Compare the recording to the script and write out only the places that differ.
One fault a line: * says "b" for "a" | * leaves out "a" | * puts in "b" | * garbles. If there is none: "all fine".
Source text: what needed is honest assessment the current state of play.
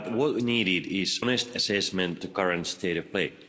all fine